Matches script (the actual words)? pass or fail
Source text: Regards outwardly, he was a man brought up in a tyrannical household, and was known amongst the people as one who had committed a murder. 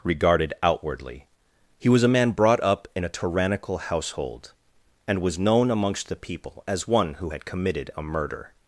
fail